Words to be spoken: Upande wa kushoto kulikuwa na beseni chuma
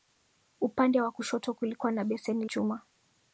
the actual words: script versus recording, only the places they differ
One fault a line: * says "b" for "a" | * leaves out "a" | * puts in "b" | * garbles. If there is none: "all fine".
all fine